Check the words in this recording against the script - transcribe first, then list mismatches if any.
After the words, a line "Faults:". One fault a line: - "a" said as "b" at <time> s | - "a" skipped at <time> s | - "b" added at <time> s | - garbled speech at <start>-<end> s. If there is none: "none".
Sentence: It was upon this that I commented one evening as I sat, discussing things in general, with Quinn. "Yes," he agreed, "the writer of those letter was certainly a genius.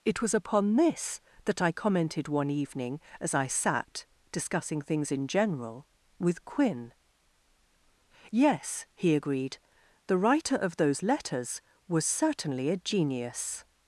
It was upon this that I commented one evening as I sat, discussing things in general, with Quinn. "Yes," he agreed, "the writer of those letters was certainly a genius.
Faults:
- "letter" said as "letters" at 11.0 s